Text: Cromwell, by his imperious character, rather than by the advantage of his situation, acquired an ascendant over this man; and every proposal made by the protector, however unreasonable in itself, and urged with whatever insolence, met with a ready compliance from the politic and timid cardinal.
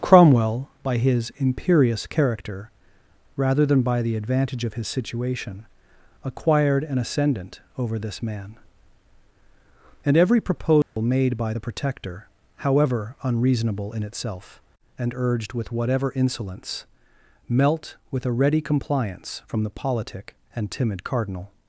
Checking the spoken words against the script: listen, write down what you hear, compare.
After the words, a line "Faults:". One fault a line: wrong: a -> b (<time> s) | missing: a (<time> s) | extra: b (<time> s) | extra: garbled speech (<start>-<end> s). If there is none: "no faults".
Cromwell, by his imperious character, rather than by the advantage of his situation, acquired an ascendant over this man; and every proposal made by the protector, however unreasonable in itself, and urged with whatever insolence, melt with a ready compliance from the politic and timid cardinal.
Faults:
wrong: met -> melt (17.5 s)